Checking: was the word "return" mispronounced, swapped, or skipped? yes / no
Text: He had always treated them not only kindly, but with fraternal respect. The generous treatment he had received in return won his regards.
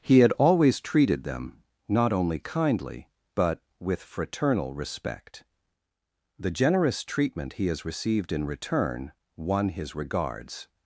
no